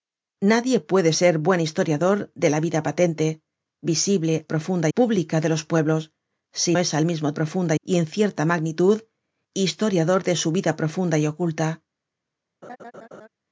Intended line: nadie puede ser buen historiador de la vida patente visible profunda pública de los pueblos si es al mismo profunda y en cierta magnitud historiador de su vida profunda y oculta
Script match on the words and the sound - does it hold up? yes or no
no